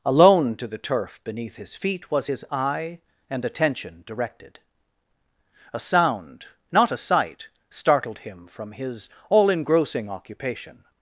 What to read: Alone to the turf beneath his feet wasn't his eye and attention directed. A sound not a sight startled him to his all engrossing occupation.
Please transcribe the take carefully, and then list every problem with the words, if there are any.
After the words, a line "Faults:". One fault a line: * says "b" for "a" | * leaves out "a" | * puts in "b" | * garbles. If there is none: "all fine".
Alone to the turf beneath his feet was his eye and attention directed. A sound not a sight startled him from his all engrossing occupation.
Faults:
* says "was" for "wasn't"
* says "from" for "to"